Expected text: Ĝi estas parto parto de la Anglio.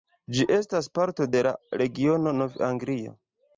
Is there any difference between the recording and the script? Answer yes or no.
yes